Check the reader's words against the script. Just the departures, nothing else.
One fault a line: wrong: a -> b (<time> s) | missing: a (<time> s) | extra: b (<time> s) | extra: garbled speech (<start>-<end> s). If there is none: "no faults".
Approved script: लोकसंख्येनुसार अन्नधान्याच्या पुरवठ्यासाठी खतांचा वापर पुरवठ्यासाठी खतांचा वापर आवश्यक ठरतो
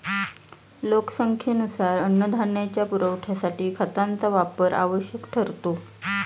missing: पुरवठ्यासाठी खतांचा वापर (4.7 s)